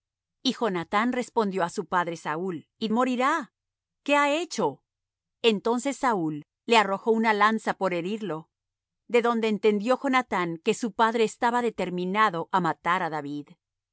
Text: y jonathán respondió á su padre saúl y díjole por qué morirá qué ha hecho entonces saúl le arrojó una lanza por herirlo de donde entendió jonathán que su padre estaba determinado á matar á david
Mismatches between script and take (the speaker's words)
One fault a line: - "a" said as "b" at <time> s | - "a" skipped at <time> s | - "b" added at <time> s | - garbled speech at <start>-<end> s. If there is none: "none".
- "díjole por qué" skipped at 2.9 s